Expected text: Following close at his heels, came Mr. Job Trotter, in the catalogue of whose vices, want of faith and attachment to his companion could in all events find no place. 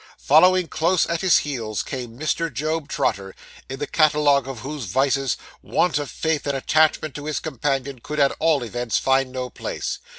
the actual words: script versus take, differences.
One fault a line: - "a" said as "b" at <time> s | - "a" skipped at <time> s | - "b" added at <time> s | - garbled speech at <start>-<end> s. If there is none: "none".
- "in" said as "at" at 8.2 s